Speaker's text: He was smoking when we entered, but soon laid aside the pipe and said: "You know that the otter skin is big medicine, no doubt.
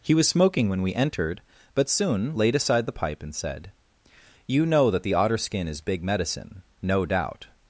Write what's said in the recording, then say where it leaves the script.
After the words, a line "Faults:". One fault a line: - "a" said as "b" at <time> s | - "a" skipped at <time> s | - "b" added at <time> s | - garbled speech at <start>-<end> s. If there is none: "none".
He was smoking when we entered, but soon laid aside the pipe and said: "You know that the otter skin is big medicine, no doubt.
Faults:
none